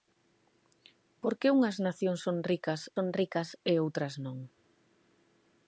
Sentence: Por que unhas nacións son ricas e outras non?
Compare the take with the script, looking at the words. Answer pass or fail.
fail